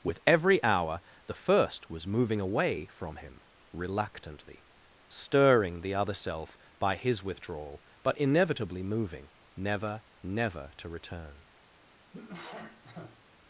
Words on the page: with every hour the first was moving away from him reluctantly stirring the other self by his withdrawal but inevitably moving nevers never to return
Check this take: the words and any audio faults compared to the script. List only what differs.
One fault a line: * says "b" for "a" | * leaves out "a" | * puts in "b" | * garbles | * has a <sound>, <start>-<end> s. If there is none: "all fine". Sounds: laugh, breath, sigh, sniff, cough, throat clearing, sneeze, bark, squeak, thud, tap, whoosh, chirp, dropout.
* says "never" for "nevers"
* has a cough, 12.1-13.2 s